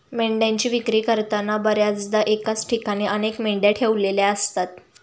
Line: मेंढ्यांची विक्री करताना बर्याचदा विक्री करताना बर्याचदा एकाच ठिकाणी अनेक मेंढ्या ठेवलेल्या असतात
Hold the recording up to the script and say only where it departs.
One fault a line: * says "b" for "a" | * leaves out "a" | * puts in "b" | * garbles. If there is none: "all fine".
* leaves out "विक्री करताना बर्याचदा"